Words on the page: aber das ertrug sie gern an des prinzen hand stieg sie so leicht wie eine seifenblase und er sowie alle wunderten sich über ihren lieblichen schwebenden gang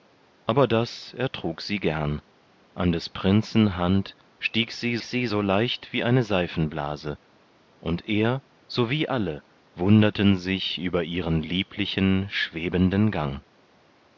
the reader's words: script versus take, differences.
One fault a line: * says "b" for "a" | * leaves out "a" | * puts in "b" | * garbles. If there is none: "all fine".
* puts in "sie"